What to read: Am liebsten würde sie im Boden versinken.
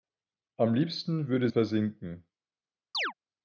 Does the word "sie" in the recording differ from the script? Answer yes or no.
yes